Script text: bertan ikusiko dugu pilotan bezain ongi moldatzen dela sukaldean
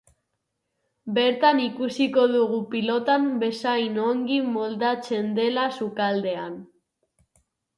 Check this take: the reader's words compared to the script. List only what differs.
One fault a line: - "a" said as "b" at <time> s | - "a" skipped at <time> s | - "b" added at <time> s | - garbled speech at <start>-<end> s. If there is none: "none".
none